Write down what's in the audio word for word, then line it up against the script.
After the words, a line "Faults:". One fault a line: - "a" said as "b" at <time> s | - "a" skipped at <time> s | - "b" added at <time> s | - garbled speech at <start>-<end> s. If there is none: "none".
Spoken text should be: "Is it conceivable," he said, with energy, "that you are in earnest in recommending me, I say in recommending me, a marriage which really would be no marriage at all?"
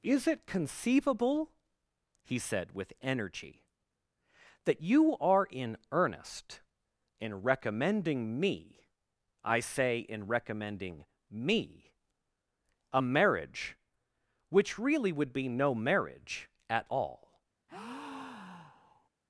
"Is it conceivable," he said, with energy, "that you are in earnest in recommending me, I say in recommending me, a marriage which really would be no marriage at all?"
Faults:
none